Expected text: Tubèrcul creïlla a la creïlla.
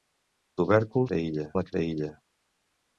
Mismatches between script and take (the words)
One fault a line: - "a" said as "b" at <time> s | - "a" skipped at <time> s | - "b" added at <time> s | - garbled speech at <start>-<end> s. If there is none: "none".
none